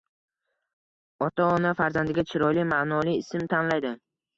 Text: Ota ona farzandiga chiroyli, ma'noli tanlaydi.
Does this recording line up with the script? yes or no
no